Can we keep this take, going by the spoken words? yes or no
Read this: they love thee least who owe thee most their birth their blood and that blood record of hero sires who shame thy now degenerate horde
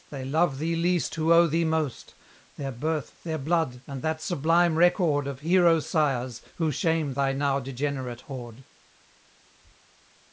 no